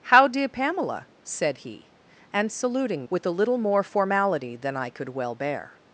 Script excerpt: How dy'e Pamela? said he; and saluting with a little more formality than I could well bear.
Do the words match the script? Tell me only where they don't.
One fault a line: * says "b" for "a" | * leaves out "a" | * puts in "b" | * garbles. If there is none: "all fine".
all fine